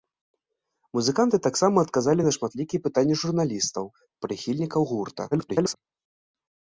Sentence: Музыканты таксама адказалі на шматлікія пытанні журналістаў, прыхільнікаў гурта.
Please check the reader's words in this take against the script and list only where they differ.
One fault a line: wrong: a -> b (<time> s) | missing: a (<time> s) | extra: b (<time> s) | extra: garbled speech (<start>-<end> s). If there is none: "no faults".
extra: garbled speech (5.3-5.7 s)